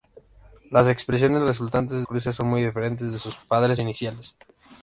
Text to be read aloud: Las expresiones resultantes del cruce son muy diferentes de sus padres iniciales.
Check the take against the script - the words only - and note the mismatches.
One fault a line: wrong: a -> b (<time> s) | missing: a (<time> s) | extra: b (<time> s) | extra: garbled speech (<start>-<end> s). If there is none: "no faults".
missing: del (2.0 s)